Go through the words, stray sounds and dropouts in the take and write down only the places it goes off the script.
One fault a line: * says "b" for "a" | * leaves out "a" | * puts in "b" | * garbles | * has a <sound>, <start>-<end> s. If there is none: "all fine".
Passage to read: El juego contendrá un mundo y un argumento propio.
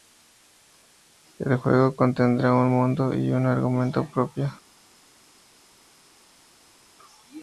all fine